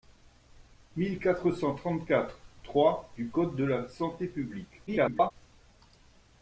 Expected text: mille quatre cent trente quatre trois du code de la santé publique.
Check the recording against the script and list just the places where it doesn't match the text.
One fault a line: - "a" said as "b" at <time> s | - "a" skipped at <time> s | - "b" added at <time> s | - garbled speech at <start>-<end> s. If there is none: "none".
- garbled speech at 4.9-5.3 s